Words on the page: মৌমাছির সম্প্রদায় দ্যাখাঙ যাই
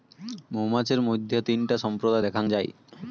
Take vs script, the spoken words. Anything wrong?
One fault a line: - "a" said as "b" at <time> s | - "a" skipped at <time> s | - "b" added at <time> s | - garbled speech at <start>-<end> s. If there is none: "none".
- "মইধ্যে তিনটা" added at 1.0 s